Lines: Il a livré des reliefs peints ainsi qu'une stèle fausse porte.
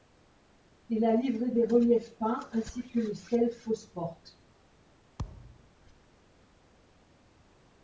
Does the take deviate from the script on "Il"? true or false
false